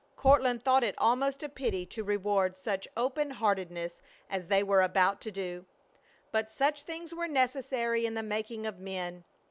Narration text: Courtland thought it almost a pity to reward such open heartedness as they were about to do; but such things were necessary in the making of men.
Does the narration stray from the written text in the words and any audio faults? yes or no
no